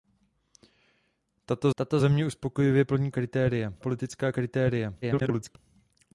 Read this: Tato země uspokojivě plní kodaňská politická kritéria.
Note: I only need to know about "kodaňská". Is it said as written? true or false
false